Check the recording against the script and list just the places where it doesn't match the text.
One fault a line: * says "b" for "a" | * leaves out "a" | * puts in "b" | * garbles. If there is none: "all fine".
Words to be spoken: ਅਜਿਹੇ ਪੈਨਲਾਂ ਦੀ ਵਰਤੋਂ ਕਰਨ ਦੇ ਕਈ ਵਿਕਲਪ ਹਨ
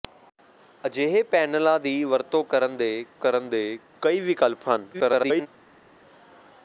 * puts in "ਕਰਨ ਦੇ"
* garbles